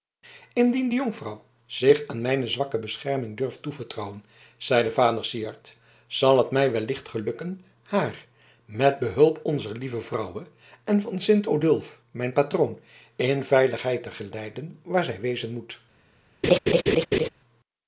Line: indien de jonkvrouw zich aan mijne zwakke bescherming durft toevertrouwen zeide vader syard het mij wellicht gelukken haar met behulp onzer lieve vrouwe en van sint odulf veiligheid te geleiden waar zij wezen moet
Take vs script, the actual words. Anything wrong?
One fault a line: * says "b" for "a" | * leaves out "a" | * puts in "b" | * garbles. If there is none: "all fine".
* puts in "zal"
* puts in "mijn patroon in"